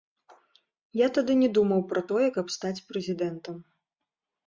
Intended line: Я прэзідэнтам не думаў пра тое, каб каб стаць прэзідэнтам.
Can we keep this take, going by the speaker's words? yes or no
no